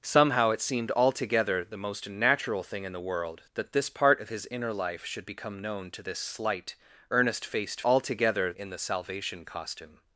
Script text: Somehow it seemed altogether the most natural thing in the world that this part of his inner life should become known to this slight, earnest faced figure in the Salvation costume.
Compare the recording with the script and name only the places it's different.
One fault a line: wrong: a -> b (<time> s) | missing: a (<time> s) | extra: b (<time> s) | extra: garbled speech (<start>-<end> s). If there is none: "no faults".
wrong: figure -> altogether (7.8 s)